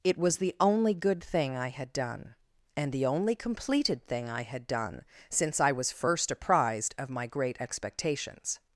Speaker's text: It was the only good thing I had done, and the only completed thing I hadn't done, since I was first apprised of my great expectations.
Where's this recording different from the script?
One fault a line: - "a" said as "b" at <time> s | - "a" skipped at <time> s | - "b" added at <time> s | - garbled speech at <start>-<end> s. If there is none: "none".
- "hadn't" said as "had" at 4.4 s